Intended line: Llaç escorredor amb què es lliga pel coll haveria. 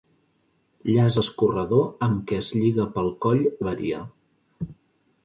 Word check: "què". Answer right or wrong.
right